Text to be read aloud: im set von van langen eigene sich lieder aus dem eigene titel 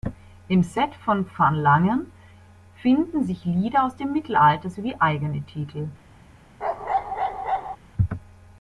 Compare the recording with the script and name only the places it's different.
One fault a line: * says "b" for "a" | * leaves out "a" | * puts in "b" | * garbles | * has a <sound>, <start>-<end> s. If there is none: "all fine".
* says "finden" for "eigene"
* puts in "mittelalter sowie"
* has a bark, 6.6-7.8 s